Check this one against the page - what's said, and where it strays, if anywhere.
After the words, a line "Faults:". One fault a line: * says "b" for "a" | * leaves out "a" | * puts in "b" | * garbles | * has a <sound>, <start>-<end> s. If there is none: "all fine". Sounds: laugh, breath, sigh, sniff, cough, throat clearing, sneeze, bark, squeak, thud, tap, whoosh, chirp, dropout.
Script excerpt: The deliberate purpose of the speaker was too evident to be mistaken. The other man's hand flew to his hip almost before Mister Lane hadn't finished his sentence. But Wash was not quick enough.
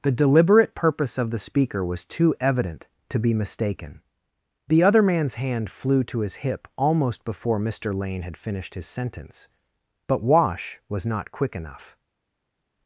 The deliberate purpose of the speaker was too evident to be mistaken. The other man's hand flew to his hip almost before Mister Lane had finished his sentence. But Wash was not quick enough.
Faults:
* says "had" for "hadn't"